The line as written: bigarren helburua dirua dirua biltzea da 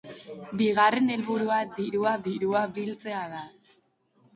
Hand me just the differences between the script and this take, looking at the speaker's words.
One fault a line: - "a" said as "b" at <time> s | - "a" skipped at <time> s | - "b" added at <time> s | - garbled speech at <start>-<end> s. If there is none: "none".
none